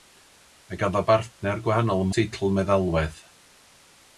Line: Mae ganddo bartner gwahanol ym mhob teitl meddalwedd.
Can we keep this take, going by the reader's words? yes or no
no